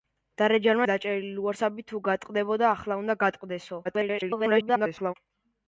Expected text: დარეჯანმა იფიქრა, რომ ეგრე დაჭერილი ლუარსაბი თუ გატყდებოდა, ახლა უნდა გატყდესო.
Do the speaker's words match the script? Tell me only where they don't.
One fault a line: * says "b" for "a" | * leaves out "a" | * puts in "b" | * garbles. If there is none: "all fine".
* leaves out "იფიქრა რომ ეგრე"
* garbles